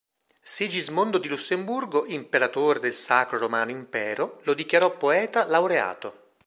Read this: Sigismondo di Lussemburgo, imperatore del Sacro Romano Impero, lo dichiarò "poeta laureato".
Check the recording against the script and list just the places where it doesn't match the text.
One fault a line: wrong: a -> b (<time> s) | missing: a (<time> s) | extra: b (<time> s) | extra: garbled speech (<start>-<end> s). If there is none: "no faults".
no faults